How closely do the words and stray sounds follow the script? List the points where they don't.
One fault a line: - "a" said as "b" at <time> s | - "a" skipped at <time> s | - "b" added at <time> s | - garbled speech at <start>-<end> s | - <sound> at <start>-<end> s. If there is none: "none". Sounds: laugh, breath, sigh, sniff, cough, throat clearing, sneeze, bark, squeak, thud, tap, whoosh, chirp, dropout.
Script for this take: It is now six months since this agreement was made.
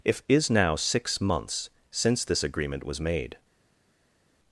- "It" said as "If" at 0.0 s